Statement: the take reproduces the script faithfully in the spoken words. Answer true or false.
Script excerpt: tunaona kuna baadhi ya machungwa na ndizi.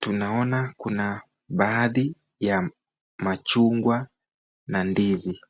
true